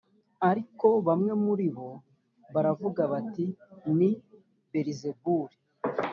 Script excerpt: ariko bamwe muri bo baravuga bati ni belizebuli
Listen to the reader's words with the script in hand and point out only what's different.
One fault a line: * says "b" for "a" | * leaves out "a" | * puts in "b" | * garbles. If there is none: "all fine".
all fine